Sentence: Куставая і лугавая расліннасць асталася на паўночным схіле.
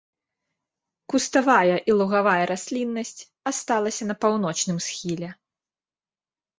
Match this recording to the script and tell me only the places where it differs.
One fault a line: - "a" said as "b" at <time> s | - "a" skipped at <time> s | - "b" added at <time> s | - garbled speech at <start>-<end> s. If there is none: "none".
none